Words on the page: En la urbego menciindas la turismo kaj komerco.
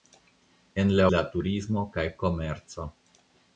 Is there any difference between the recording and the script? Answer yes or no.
yes